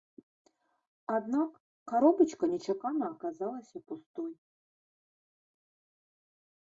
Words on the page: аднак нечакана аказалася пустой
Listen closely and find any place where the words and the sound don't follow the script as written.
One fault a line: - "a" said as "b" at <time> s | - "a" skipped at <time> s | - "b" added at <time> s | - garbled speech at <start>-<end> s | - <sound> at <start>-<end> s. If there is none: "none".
- "каробачка" added at 1.9 s